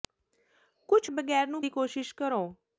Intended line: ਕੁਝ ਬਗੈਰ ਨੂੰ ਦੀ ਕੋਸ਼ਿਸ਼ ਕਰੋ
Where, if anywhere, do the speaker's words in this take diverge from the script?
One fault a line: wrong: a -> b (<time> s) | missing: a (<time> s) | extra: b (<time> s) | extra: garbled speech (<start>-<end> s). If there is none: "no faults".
no faults